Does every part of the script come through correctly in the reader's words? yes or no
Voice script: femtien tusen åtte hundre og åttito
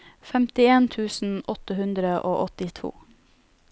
yes